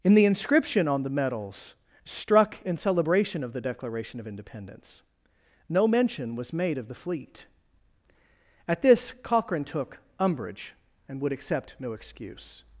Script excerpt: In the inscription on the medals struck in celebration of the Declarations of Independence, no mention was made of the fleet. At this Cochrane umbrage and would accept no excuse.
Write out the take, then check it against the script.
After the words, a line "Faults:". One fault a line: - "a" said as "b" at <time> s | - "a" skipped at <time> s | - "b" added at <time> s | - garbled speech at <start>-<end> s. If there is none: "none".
In the inscription on the medals struck in celebration of the Declaration of Independence, no mention was made of the fleet. At this Cochrane took umbrage and would accept no excuse.
Faults:
- "Declarations" said as "Declaration" at 3.6 s
- "took" added at 9.6 s